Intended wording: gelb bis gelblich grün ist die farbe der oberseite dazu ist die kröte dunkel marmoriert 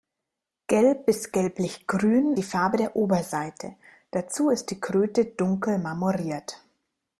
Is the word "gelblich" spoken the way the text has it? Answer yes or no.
yes